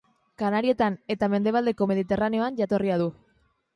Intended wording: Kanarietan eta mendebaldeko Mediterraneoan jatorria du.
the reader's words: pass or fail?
pass